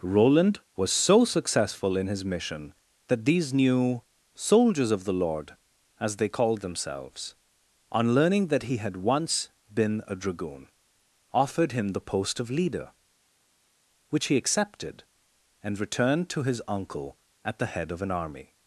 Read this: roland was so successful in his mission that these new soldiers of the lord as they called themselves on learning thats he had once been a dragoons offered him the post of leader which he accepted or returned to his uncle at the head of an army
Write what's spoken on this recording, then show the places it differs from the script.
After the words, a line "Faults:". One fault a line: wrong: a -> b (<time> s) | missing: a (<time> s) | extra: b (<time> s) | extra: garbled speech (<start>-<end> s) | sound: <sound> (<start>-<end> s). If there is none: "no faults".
roland was so successful in his mission that these new soldiers of the lord as they called themselves on learning that he had once been a dragoon offered him the post of leader which he accepted and returned to his uncle at the head of an army
Faults:
wrong: thats -> that (8.5 s)
wrong: dragoons -> dragoon (10.2 s)
wrong: or -> and (15.6 s)